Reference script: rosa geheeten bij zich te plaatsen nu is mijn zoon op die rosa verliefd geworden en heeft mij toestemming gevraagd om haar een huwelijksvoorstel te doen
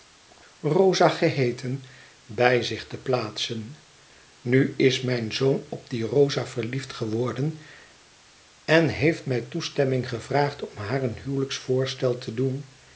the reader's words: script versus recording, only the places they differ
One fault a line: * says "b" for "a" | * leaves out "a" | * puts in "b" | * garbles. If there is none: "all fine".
all fine